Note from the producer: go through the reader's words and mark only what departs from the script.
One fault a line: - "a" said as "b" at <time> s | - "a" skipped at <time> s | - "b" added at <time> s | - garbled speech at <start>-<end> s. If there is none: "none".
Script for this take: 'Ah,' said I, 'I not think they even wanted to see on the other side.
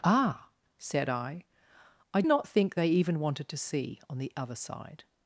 none